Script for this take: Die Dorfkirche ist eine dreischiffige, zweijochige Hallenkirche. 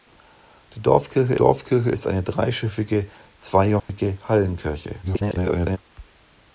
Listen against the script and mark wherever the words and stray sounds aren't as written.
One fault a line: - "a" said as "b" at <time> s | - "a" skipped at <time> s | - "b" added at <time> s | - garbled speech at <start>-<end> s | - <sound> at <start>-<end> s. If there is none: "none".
- "Dorfkirche" added at 1.3 s
- dropout at 3.8-3.9 s
- garbled speech at 5.0-5.8 s